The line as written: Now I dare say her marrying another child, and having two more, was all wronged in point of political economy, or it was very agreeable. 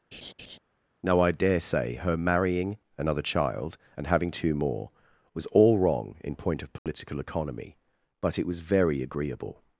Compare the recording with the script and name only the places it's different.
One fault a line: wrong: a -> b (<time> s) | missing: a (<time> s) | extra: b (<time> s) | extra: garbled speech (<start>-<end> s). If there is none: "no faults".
wrong: wronged -> wrong (5.8 s)
wrong: or -> but (8.2 s)